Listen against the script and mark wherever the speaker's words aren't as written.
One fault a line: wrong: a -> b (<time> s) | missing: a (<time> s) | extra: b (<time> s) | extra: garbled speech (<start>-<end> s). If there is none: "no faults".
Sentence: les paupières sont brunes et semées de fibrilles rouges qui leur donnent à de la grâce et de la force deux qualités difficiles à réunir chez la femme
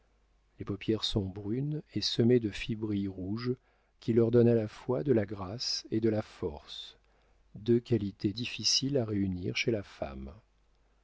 extra: la fois (4.5 s)